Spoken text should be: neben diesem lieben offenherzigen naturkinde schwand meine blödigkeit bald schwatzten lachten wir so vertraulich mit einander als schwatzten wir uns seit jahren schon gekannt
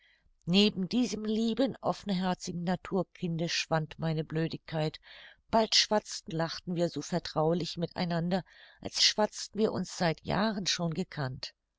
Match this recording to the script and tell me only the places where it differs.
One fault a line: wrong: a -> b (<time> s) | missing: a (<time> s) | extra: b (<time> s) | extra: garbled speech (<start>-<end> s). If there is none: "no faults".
no faults